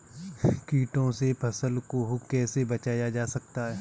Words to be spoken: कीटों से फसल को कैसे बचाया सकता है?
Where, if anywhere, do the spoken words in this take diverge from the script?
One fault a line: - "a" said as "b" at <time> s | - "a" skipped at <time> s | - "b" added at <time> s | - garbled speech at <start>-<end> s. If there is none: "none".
- "जा" added at 3.1 s